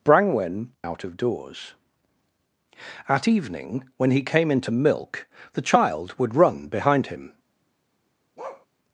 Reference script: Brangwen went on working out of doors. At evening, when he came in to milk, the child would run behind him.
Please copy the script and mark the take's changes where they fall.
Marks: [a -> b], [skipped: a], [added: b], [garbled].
Brangwen [skipped: went on working] out of doors. At evening, when he came in to milk, the child would run behind him.